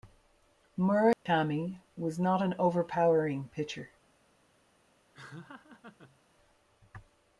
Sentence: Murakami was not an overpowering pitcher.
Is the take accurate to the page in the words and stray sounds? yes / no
no